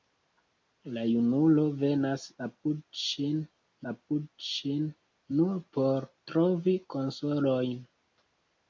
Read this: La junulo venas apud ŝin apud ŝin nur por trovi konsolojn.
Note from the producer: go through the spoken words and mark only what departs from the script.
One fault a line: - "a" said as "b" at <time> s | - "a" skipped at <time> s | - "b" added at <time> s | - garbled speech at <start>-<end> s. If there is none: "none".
none